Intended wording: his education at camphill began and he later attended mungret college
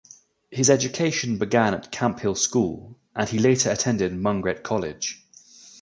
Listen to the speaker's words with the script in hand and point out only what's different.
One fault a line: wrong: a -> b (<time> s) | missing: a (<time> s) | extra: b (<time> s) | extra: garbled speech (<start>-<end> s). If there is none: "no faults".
extra: began (1.4 s)
wrong: began -> school (2.3 s)